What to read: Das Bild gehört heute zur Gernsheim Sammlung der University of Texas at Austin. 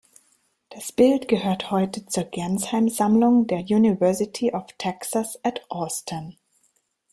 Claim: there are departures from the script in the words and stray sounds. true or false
false